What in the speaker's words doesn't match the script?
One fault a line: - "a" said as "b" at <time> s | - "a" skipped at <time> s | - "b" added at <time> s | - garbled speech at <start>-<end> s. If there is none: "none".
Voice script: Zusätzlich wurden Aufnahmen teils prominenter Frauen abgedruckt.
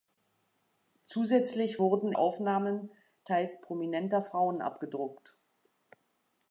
none